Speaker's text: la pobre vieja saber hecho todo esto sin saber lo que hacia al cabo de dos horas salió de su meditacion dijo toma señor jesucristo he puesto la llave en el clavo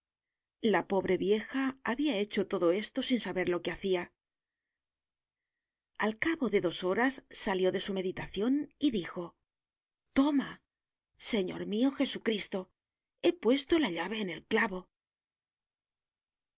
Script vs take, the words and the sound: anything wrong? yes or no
yes